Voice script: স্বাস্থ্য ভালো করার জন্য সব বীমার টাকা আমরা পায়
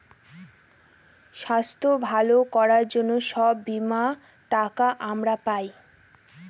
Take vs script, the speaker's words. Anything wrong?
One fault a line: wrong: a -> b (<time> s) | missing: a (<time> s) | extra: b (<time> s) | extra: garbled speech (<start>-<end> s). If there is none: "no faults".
no faults